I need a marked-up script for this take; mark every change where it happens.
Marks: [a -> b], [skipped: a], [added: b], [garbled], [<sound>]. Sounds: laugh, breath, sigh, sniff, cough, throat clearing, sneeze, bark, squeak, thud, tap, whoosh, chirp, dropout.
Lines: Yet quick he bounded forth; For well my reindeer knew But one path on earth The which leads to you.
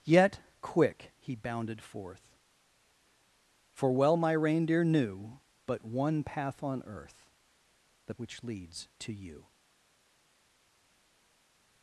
Yet quick he bounded forth; For well my reindeer knew But one path on earth The which leads to you.